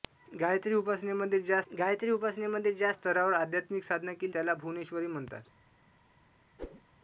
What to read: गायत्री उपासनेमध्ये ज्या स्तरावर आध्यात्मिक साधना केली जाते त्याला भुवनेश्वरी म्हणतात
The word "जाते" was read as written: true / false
false